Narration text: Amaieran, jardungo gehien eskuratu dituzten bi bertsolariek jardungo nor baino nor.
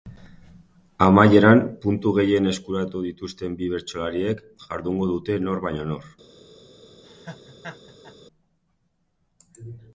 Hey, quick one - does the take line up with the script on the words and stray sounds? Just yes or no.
no